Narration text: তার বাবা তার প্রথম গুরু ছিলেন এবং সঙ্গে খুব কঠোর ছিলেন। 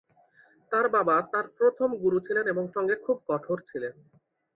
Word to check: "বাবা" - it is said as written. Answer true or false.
true